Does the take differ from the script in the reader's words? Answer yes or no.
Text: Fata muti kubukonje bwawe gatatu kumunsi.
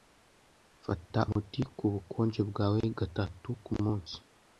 no